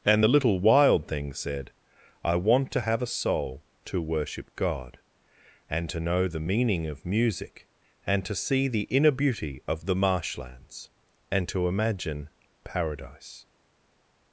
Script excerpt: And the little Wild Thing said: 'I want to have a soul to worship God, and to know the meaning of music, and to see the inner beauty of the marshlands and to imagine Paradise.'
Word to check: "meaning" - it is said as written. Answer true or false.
true